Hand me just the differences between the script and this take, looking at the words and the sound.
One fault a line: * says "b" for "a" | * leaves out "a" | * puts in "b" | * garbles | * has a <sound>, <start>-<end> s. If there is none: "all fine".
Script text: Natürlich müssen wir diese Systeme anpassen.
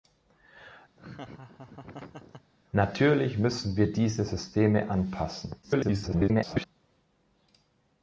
* has a laugh, 1.0-2.5 s
* garbles